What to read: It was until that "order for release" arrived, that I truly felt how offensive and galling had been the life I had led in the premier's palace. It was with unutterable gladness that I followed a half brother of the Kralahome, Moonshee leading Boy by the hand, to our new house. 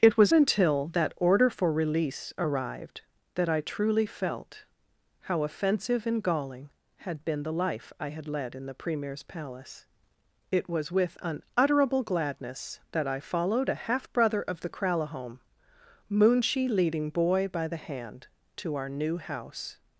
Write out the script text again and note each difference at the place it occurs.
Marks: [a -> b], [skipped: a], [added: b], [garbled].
It was until that "order for release" arrived, that I truly felt how offensive and galling had been the life I had led in the premier's palace. It was with unutterable gladness that I followed a half brother of the Kralahome, Moonshee leading Boy by the hand, to our new house.